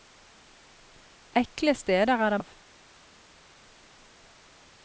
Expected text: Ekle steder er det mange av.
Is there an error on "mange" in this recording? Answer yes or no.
yes